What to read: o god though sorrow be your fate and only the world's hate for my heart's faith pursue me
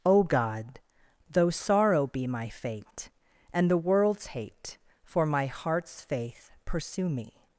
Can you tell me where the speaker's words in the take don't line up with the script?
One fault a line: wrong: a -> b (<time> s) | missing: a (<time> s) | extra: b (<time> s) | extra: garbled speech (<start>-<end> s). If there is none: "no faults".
wrong: your -> my (2.3 s)
missing: only (3.7 s)